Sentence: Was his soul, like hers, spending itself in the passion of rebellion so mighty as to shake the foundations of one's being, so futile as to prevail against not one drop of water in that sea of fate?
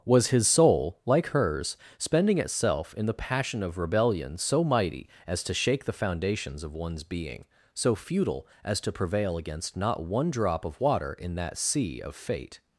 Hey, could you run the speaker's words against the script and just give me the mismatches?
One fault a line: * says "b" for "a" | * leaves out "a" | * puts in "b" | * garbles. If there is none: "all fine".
all fine